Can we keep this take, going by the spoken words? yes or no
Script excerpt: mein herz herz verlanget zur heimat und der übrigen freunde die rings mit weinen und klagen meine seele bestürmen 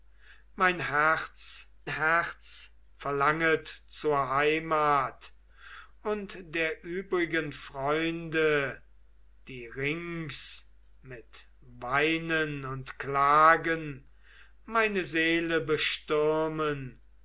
yes